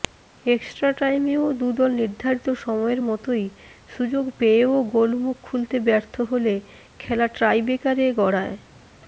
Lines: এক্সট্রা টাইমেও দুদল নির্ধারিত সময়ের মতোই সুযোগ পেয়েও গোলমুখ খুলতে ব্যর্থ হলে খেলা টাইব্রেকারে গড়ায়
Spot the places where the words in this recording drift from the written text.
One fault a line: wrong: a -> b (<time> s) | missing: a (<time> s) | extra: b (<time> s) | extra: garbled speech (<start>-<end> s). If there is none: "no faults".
no faults